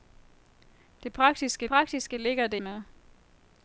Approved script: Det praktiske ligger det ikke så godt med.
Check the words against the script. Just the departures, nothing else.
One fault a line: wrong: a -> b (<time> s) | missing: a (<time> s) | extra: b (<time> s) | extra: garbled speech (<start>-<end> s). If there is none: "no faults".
extra: praktiske (1.7 s)
missing: ikke så godt (2.6 s)